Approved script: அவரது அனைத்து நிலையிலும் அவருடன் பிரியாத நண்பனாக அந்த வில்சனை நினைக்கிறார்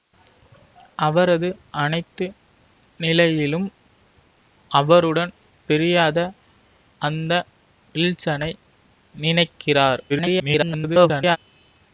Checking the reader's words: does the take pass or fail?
fail